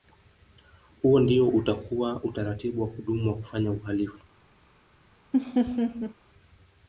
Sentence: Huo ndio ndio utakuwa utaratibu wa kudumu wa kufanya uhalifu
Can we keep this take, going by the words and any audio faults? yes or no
no